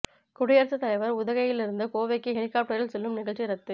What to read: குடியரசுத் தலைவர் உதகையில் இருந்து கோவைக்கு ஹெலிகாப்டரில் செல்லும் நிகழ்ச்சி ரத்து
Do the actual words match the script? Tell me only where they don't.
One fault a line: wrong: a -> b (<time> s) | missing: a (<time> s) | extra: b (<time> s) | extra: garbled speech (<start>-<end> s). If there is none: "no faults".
no faults